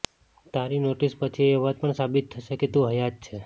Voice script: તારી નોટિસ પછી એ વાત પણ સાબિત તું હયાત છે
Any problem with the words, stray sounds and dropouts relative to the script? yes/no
yes